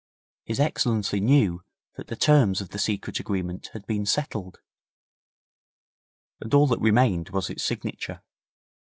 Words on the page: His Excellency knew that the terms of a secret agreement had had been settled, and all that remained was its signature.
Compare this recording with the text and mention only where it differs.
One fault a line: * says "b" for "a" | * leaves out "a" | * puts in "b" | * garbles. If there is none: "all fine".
* says "the" for "a"
* leaves out "had"